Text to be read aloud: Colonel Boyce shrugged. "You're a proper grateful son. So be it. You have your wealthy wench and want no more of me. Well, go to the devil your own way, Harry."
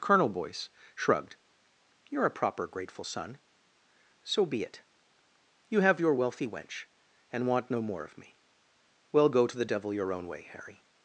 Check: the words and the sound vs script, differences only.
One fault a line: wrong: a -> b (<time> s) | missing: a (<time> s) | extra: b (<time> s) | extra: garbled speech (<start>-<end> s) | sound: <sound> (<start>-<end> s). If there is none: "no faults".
no faults